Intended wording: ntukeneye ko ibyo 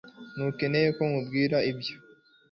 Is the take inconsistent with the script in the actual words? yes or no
yes